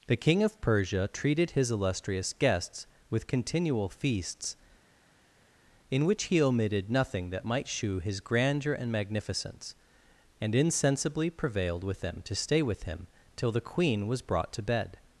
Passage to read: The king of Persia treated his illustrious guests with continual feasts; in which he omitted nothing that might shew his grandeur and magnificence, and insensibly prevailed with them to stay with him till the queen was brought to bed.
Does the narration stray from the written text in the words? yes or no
no